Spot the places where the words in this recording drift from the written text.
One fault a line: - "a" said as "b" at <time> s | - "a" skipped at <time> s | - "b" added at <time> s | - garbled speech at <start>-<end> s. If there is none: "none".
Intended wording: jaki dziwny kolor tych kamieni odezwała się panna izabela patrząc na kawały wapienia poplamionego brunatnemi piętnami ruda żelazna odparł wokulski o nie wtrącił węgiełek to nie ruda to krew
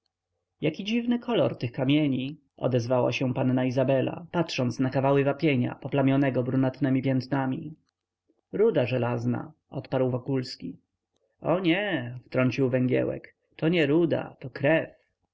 none